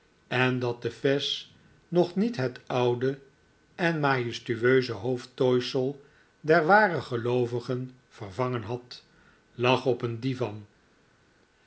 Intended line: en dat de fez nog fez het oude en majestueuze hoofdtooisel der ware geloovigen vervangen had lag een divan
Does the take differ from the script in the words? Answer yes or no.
yes